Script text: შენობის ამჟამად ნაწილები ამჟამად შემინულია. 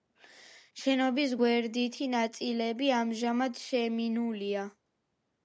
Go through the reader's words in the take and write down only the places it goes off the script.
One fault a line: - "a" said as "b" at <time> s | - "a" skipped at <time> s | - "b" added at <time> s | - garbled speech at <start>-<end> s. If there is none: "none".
- "ამჟამად" said as "გვერდითი" at 1.4 s